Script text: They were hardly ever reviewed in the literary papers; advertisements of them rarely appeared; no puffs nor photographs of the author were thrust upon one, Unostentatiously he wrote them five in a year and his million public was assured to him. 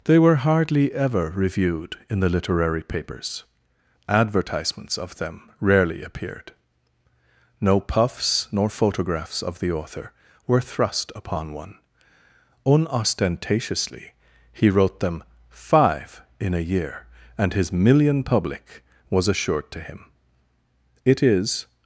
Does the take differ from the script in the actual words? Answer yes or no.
yes